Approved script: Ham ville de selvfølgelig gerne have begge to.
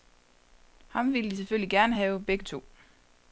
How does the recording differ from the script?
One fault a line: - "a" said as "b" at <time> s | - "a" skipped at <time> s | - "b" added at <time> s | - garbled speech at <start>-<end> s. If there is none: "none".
none